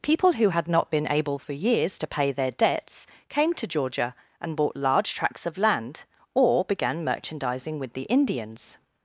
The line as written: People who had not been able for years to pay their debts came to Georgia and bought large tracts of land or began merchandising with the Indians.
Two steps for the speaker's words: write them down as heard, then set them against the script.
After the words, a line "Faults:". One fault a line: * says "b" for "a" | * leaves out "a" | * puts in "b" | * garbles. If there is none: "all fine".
People who had not been able for years to pay their debts came to Georgia and bought large tracts of land or began merchandising with the Indians.
Faults:
all fine